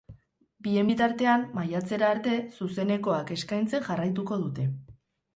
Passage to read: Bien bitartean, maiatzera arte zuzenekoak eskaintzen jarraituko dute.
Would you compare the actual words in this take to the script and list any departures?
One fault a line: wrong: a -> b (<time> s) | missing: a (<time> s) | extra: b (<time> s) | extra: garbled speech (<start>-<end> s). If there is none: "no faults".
no faults